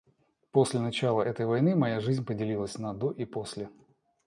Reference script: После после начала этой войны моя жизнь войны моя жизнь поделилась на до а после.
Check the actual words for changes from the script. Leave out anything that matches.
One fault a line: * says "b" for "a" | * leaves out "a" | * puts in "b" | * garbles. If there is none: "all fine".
* leaves out "после"
* leaves out "войны моя жизнь"
* says "и" for "а"